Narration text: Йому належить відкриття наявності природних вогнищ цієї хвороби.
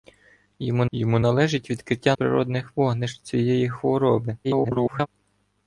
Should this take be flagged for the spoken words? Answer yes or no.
yes